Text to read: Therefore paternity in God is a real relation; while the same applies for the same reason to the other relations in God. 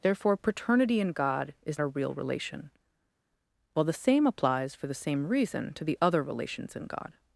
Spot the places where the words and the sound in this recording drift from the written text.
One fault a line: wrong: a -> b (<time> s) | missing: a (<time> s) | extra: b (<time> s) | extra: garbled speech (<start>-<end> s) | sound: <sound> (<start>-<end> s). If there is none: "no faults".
no faults